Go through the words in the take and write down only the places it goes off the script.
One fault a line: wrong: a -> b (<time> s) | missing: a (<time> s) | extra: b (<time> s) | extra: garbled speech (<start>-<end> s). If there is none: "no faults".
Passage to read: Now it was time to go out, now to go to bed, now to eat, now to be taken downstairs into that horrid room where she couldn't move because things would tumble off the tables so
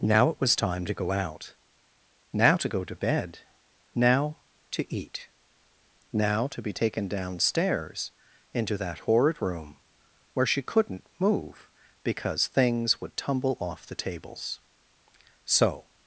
no faults